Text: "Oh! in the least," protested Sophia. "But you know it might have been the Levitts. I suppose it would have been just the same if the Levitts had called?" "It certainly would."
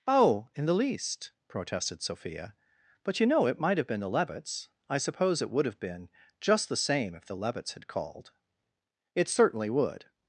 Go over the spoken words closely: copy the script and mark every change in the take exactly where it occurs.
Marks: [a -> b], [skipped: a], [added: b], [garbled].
"Oh! in the least," protested Sophia. "But you know it might have been the Levitts. I suppose it would have been just the same if the Levitts had called?" "It certainly would."